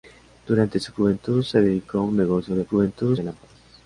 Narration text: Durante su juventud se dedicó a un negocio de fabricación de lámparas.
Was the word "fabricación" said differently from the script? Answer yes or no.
yes